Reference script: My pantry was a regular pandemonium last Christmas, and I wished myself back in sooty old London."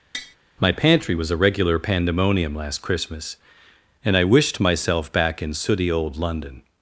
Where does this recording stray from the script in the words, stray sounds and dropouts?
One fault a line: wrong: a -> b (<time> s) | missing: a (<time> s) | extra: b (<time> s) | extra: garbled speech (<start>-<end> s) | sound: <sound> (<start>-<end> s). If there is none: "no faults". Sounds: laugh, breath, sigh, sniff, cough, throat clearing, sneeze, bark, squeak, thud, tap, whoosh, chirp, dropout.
sound: tap (0.1-0.4 s)